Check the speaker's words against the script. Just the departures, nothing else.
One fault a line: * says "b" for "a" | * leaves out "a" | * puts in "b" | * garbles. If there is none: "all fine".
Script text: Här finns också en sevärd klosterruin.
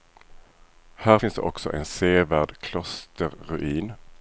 all fine